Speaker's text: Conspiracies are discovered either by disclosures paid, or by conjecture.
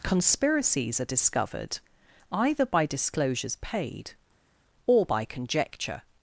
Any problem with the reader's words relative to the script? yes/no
no